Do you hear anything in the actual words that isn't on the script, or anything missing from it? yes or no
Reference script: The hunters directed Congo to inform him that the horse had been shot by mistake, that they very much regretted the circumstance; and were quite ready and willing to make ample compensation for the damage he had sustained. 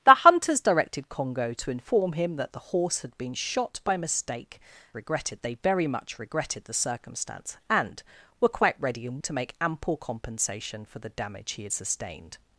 yes